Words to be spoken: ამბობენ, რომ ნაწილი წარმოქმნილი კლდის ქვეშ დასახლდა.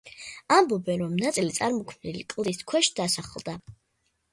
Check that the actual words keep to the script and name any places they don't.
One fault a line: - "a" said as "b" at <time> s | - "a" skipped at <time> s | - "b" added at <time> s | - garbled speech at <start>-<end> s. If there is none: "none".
none